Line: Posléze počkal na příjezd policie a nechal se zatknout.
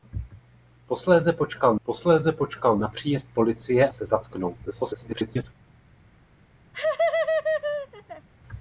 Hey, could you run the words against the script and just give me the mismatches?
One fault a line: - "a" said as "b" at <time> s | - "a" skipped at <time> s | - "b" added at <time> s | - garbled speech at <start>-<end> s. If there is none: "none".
- "posléze počkal" added at 1.8 s
- "a nechal" skipped at 3.9 s
- garbled speech at 4.7-5.4 s